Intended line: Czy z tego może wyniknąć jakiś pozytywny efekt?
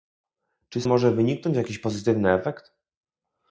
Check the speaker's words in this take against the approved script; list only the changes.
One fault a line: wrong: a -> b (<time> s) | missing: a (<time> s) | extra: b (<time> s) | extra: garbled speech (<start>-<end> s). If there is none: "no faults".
missing: tego (0.9 s)